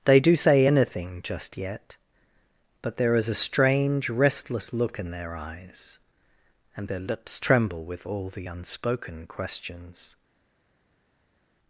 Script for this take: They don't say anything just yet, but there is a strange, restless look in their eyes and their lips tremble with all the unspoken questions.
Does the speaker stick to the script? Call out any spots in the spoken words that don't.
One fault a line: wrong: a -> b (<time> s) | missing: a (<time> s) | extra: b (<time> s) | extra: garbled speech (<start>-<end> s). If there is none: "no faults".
wrong: don't -> do (0.2 s)